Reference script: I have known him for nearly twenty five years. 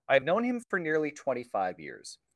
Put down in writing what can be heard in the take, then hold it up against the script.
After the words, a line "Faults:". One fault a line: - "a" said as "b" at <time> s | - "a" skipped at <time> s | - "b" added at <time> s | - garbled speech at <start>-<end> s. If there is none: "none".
I have known him for nearly twenty five years.
Faults:
none